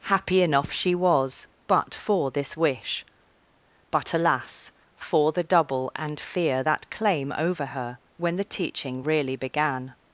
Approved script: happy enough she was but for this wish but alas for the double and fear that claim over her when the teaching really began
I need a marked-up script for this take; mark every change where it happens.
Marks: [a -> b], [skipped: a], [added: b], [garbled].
happy enough she was but for this wish but alas for the double and fear that claim over her when the teaching really began